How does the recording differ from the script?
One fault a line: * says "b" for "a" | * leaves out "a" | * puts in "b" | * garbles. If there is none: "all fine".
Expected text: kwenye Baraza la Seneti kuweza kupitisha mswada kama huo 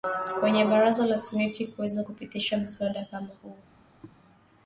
all fine